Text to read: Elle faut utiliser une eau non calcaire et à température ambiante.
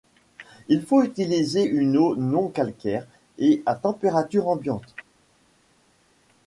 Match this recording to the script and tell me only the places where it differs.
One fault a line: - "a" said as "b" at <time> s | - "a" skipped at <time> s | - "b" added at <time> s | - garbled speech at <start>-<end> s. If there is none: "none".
- "Elle" said as "Il" at 0.7 s